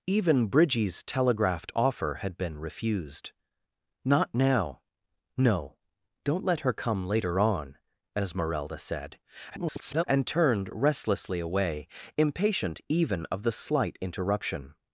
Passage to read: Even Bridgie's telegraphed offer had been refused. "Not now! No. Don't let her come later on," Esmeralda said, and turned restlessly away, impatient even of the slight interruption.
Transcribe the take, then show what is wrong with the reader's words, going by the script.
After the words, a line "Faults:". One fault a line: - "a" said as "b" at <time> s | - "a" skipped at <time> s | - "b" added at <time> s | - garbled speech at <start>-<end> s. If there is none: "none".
Even Bridgie's telegraphed offer had been refused. "Not now! No. Don't let her come later on," Esmeralda said, [garbled] and turned restlessly away, impatient even of the slight interruption.
Faults:
- garbled speech at 9.5-10.0 s